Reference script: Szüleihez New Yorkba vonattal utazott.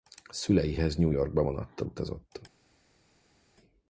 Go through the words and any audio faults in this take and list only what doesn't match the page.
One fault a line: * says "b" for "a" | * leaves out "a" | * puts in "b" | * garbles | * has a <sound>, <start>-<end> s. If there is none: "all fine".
all fine